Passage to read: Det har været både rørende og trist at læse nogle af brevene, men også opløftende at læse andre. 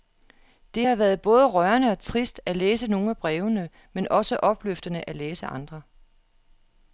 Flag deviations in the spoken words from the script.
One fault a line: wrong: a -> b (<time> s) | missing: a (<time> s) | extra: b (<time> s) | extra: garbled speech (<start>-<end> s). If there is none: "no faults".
no faults